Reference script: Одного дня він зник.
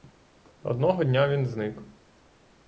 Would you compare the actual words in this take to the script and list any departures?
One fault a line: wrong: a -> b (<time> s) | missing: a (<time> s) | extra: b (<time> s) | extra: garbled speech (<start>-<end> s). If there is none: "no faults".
no faults